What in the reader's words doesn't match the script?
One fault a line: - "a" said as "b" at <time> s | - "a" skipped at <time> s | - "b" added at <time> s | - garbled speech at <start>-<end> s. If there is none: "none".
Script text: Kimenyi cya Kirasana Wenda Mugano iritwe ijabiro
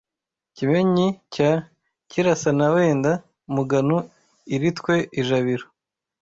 none